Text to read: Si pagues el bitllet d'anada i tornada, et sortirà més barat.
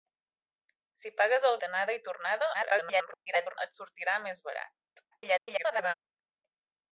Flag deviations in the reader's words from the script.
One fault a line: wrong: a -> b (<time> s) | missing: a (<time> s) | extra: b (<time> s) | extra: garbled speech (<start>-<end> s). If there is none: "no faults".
missing: bitllet (1.6 s)
extra: garbled speech (2.5-3.6 s)
extra: garbled speech (5.1-5.9 s)